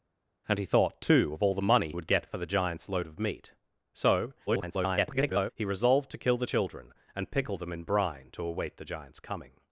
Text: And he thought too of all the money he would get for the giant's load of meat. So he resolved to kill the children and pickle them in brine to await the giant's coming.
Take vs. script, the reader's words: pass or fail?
fail